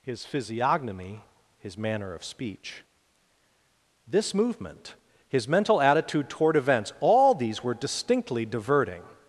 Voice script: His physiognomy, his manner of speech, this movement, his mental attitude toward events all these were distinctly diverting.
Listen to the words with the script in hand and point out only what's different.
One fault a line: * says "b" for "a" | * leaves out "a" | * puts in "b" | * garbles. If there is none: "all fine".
all fine